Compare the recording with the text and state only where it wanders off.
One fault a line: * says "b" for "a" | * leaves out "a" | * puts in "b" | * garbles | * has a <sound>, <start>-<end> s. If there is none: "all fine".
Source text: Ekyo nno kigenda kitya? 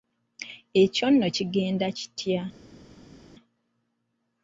all fine